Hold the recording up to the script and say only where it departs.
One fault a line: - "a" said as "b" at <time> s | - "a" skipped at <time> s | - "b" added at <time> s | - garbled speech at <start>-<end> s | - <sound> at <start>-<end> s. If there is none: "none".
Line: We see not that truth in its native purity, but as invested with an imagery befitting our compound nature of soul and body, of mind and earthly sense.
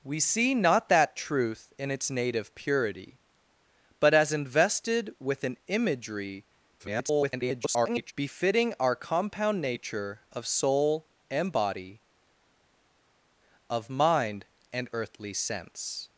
- garbled speech at 6.8-8.1 s